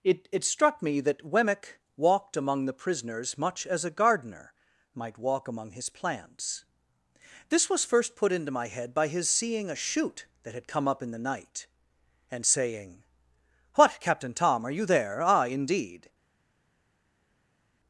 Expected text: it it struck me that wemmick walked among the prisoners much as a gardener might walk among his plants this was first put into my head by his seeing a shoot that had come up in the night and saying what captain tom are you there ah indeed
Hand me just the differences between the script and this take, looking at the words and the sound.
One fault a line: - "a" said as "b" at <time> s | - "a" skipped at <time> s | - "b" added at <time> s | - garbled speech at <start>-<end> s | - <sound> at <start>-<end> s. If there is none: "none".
none